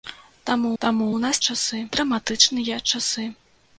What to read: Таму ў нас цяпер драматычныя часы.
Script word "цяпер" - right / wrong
wrong